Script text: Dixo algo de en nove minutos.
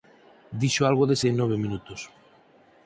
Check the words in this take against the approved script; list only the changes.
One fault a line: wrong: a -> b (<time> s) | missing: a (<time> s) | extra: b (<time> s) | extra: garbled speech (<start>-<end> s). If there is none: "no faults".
no faults